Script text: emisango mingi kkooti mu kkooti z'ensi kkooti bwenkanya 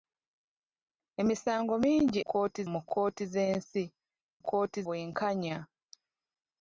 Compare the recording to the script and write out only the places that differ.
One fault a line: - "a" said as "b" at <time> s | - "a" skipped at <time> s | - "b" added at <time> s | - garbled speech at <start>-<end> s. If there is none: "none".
none